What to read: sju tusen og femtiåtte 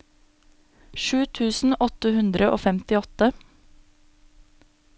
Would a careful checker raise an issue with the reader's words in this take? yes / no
yes